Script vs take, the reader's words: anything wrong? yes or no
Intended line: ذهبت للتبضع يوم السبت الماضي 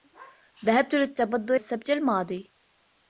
yes